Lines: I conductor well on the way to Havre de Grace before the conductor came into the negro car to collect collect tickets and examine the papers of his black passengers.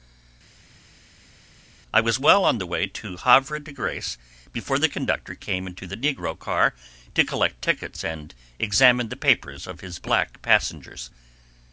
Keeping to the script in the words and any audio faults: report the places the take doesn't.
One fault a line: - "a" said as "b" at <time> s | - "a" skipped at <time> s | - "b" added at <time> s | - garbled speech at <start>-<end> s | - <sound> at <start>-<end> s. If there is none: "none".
- "conductor" said as "was" at 2.0 s
- "collect" skipped at 7.6 s